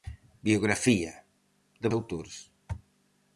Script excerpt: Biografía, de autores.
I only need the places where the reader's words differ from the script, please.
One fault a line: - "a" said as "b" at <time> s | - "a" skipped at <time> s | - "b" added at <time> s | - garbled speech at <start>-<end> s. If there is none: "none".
none